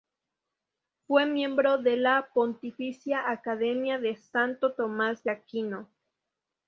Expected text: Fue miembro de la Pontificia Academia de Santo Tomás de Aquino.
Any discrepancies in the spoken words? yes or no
no